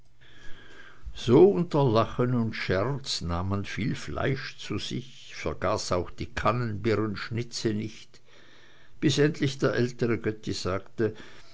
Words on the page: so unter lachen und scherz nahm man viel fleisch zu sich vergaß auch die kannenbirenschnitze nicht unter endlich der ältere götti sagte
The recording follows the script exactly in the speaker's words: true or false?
false